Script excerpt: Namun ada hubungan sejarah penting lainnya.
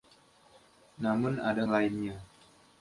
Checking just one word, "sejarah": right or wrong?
wrong